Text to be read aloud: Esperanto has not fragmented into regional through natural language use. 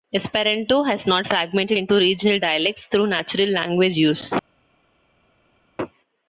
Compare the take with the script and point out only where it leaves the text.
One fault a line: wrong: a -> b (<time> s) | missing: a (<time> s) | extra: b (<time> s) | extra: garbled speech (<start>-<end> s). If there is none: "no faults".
extra: dialects (2.4 s)